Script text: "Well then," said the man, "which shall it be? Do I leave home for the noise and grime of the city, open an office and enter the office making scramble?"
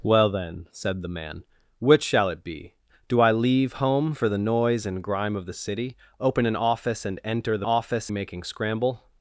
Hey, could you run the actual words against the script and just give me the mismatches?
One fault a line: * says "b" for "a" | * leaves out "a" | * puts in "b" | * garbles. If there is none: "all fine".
all fine